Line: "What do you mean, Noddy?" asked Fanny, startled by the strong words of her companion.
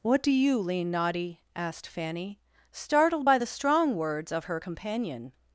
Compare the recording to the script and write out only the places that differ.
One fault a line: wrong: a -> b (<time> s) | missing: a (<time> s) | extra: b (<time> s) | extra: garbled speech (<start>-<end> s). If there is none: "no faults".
wrong: mean -> lean (0.6 s)